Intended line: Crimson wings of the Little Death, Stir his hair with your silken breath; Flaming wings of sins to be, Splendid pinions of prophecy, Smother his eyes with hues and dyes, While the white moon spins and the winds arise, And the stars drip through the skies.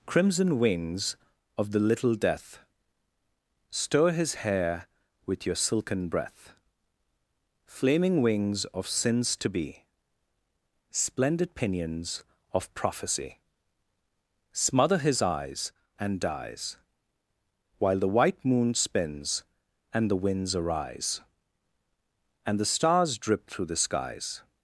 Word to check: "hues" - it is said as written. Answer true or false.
false